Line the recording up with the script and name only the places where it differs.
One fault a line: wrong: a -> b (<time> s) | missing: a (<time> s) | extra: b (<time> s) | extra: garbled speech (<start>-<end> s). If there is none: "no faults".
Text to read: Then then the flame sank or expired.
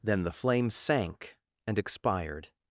missing: then (0.2 s)
wrong: or -> and (1.7 s)